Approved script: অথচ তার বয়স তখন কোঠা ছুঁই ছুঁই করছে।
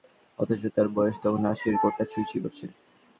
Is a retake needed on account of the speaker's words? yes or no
yes